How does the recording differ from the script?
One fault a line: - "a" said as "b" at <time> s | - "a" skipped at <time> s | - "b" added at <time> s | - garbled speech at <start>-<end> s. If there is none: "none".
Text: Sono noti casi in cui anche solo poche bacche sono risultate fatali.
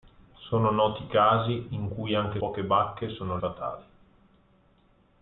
- "solo" skipped at 2.4 s
- "risultate" skipped at 3.4 s